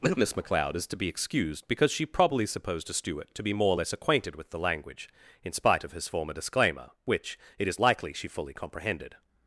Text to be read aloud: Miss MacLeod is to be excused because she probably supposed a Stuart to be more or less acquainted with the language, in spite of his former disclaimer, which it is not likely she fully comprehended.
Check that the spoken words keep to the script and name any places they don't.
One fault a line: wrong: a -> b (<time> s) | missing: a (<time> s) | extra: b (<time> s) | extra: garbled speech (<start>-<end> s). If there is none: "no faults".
missing: not (7.8 s)